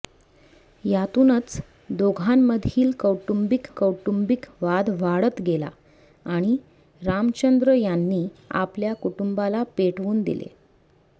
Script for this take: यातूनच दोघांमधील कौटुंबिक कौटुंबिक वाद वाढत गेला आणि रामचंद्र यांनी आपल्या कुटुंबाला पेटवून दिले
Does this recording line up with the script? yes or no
yes